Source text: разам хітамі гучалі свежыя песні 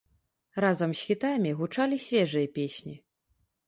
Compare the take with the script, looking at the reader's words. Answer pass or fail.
fail